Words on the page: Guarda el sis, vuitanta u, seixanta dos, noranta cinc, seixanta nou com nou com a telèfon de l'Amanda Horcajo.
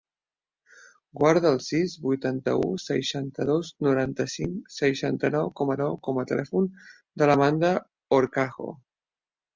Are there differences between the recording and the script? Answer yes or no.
no